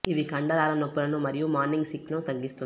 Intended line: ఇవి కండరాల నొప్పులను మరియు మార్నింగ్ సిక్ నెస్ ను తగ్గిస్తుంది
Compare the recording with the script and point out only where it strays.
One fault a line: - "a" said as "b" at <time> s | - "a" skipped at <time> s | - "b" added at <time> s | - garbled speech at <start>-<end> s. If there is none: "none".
- "నెస్" skipped at 2.1 s